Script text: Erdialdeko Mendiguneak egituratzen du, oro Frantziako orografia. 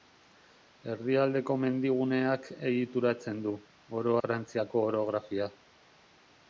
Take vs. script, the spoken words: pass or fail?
pass